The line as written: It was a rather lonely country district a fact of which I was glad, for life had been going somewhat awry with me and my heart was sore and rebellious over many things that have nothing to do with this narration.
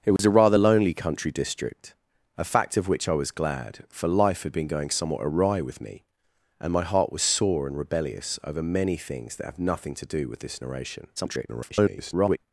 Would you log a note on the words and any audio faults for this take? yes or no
yes